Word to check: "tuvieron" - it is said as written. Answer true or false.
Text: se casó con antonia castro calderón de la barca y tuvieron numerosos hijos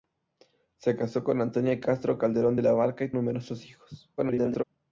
false